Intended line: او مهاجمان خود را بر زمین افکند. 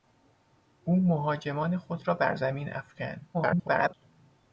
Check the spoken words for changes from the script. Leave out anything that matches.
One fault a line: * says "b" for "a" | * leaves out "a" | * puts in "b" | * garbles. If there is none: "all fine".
* garbles